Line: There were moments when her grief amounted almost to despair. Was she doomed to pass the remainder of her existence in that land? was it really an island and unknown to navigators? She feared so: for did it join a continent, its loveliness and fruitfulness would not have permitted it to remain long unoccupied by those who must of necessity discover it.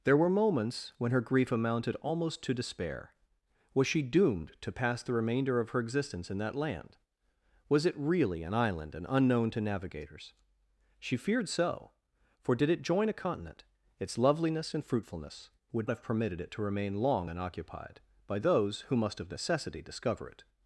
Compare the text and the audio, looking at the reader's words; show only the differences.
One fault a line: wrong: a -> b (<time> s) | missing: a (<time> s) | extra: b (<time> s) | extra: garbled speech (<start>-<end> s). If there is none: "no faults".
missing: not (15.9 s)